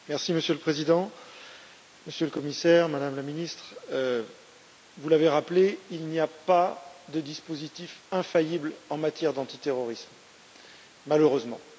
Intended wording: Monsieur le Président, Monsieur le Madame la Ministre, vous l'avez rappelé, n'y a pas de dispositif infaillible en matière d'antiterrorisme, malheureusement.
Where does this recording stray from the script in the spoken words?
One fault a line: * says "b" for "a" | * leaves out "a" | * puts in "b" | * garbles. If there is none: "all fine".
* puts in "Commissaire"
* puts in "il"